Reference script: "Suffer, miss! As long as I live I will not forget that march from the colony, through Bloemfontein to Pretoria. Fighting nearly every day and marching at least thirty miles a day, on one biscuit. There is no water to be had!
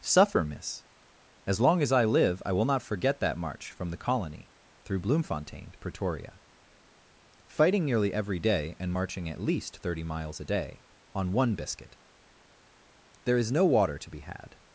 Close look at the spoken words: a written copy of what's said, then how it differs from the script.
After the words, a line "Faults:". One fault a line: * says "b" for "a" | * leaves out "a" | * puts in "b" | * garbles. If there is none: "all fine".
"Suffer, miss! As long as I live I will not forget that march from the colony, through Bloemfontein to Pretoria. Fighting nearly every day and marching at least thirty miles a day, on one biscuit. There is no water to be had!
Faults:
all fine